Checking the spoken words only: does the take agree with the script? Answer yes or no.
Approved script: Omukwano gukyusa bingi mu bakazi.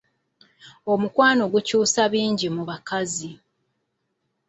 yes